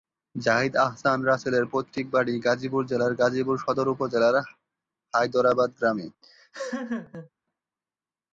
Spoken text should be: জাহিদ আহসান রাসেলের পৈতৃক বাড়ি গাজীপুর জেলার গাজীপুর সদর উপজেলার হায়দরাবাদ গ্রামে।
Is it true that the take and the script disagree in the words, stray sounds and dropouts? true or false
true